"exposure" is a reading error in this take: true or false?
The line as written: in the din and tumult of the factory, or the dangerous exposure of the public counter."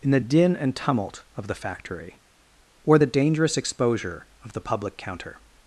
false